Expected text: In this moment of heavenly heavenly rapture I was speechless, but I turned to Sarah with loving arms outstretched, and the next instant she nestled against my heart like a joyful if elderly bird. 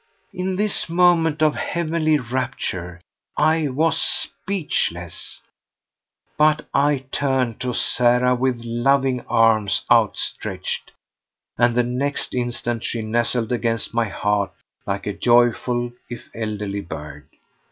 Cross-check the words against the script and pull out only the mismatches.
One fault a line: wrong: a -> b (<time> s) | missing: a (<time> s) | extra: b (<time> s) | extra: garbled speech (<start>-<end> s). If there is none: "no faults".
missing: heavenly (2.2 s)